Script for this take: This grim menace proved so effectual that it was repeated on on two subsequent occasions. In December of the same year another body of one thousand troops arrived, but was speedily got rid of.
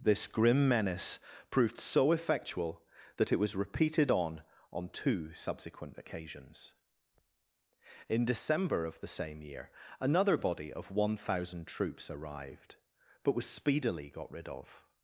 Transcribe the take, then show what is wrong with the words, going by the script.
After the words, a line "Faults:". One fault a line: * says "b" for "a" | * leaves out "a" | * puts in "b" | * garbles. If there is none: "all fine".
This grim menace proved so effectual that it was repeated on on two subsequent occasions. In December of the same year another body of one thousand troops arrived, but was speedily got rid of.
Faults:
all fine